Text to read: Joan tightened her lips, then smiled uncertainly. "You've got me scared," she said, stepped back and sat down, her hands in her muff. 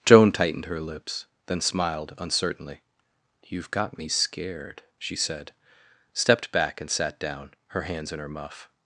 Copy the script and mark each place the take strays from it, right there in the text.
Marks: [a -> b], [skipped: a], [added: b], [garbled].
Joan tightened her lips, then smiled uncertainly. "You've got me scared," she said, stepped back and sat down, her hands in her muff.